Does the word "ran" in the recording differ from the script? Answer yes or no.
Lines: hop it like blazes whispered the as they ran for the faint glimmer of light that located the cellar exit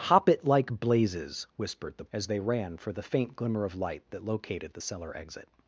no